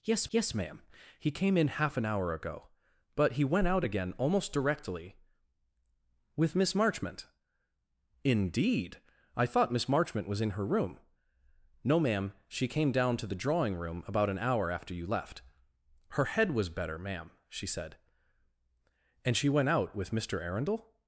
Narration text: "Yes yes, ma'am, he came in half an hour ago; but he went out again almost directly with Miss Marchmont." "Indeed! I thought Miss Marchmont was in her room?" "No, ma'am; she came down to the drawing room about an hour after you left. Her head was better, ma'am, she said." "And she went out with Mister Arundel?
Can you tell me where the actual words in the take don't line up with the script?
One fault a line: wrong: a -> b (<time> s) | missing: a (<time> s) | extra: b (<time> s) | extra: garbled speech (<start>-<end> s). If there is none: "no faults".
no faults